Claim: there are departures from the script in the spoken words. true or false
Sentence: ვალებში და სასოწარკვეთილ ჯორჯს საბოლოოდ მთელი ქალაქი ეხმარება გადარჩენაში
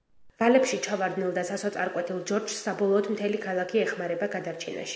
true